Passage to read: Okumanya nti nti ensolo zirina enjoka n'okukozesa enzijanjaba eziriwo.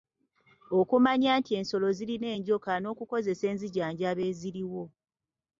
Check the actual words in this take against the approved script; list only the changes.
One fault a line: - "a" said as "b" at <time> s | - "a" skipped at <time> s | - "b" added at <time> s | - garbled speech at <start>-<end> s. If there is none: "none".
- "nti" skipped at 1.5 s